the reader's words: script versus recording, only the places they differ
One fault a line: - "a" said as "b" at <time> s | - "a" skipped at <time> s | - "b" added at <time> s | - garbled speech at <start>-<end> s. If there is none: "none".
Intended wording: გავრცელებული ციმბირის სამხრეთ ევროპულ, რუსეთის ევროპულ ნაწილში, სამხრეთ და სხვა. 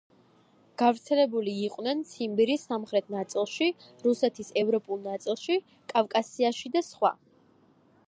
- "იყვნენ" added at 1.6 s
- "ევროპულ" said as "ნაწილში" at 3.2 s
- "სამხრეთ" said as "კავკასიაში" at 6.0 s